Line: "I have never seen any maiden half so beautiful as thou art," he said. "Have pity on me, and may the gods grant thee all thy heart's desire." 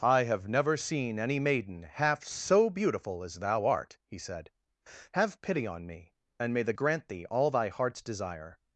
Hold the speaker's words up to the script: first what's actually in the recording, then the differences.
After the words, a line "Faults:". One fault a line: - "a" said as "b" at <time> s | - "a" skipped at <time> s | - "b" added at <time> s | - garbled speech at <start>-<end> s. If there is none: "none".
"I have never seen any maiden half so beautiful as thou art," he said. "Have pity on me, and may the grant thee all thy heart's desire."
Faults:
- "gods" skipped at 6.7 s